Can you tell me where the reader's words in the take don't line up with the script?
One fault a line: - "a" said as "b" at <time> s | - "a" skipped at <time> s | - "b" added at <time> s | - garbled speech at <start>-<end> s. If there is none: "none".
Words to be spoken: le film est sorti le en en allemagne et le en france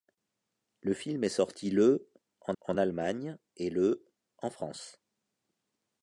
none